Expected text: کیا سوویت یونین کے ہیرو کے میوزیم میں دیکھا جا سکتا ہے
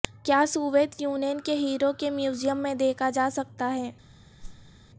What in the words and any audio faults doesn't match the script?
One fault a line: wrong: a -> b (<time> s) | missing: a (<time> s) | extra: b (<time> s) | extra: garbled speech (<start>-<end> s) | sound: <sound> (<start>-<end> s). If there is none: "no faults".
sound: whoosh (4.4-4.7 s)